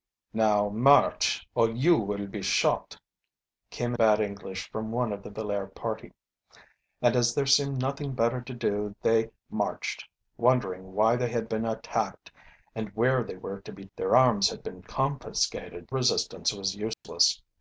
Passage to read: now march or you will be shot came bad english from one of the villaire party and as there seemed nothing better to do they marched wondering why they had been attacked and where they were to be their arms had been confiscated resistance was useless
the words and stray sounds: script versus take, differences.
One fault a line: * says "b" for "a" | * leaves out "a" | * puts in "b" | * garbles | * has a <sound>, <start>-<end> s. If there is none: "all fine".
* has a dropout, 16.9-17.0 s